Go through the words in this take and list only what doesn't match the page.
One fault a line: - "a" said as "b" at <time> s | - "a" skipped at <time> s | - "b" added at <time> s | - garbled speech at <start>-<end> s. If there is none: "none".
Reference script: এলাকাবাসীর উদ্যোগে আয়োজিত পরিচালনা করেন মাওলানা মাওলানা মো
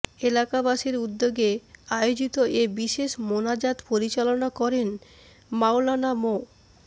- "এ বিশেষ মোনাজাত" added at 2.5 s
- "মাওলানা" skipped at 6.1 s